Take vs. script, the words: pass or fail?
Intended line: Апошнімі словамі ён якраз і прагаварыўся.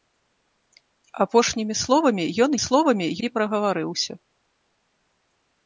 fail